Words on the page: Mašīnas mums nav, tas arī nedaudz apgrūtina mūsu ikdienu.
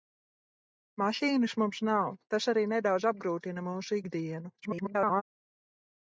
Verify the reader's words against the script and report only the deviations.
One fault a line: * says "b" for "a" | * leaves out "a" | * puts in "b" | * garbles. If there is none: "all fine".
* garbles